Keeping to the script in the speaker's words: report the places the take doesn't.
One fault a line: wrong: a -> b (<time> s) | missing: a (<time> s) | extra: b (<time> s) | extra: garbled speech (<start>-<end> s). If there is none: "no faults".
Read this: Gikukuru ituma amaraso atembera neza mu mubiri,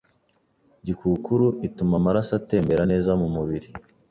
no faults